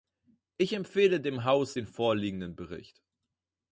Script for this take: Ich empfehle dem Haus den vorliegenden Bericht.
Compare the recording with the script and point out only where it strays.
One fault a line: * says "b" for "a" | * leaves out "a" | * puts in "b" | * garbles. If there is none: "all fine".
all fine